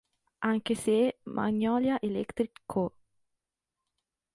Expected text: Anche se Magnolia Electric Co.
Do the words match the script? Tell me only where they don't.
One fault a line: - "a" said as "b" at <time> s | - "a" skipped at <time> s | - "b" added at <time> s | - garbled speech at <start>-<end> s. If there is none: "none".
none